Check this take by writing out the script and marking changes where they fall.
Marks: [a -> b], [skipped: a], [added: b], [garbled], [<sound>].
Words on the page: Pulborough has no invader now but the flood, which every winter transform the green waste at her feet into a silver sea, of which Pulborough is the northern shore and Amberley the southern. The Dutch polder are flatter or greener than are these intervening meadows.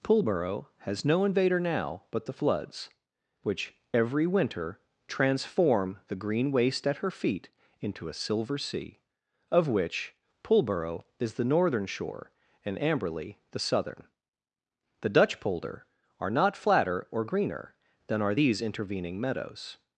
Pulborough has no invader now but the [flood, -> floods] which every winter transform the green waste at her feet into a silver sea, of which Pulborough is the northern shore and Amberley the southern. The Dutch polder are [added: not] flatter or greener than are these intervening meadows.